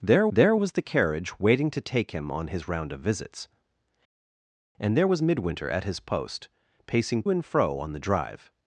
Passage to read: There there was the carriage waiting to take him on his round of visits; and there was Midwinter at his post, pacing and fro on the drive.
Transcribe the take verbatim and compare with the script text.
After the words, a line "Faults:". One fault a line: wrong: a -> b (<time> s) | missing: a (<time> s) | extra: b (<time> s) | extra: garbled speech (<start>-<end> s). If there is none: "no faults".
There there was the carriage waiting to take him on his round of visits; and there was Midwinter at his post, pacing and fro on the drive.
Faults:
no faults